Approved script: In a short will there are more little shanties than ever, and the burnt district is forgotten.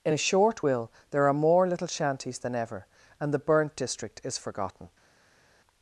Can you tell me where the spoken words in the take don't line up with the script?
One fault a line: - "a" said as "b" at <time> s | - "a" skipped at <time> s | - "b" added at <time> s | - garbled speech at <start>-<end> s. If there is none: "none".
none